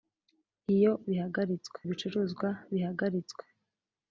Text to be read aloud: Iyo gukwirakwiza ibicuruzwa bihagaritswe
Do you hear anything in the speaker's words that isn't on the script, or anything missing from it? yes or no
yes